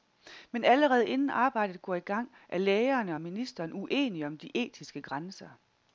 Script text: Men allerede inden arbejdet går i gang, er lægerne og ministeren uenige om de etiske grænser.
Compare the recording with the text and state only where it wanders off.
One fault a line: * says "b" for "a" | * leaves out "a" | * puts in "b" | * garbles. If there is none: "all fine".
all fine